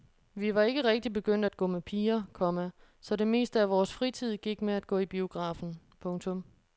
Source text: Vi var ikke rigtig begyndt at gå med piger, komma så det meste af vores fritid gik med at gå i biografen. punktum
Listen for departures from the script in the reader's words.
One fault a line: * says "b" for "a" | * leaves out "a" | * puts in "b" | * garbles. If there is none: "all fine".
all fine